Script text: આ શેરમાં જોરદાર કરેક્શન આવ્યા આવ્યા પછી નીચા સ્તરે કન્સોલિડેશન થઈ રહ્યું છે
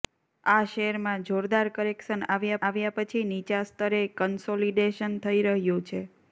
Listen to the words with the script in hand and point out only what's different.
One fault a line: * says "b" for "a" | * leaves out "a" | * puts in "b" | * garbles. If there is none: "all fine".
all fine